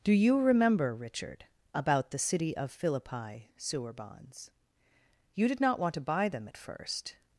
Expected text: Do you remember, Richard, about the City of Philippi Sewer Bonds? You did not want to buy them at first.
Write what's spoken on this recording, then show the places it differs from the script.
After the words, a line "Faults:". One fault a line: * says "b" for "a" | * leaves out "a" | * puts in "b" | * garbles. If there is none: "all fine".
Do you remember, Richard, about the City of Philippi Sewer Bonds? You did not want to buy them at first.
Faults:
all fine